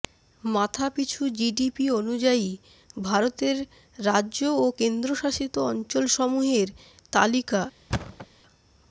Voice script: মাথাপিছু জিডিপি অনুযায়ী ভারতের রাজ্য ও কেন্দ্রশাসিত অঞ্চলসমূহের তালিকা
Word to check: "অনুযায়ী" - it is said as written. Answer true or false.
true